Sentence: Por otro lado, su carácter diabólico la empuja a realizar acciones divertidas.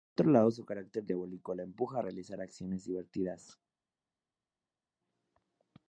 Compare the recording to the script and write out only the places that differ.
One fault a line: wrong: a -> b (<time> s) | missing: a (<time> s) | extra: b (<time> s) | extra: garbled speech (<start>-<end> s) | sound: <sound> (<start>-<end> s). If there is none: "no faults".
no faults